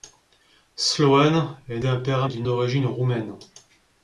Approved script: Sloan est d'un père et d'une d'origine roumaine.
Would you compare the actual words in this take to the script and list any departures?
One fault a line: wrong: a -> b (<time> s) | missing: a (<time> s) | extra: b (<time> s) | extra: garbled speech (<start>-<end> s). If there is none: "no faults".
no faults